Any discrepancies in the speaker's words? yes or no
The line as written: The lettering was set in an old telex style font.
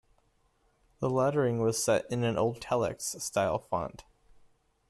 no